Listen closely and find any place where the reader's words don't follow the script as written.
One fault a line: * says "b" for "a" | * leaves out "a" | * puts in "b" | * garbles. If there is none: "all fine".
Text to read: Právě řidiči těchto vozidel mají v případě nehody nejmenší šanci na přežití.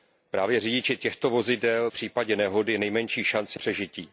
* leaves out "mají"
* leaves out "na"